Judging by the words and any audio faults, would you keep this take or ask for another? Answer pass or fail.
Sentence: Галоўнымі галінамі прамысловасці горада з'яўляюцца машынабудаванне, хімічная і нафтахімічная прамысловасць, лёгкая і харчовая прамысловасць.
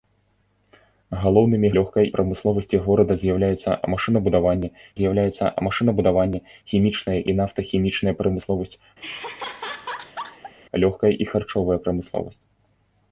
fail